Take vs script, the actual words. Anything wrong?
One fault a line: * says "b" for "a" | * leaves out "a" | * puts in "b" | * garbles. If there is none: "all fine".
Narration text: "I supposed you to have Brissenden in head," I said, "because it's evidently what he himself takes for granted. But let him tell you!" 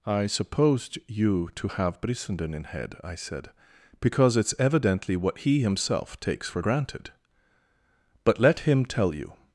all fine